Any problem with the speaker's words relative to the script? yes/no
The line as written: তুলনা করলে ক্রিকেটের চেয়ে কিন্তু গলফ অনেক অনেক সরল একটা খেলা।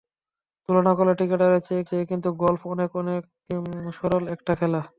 yes